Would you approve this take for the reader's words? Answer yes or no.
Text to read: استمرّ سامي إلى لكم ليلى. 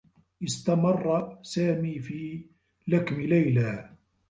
no